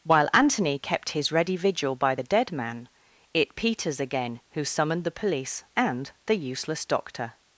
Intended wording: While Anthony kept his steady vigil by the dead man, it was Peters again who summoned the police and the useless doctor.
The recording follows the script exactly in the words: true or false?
false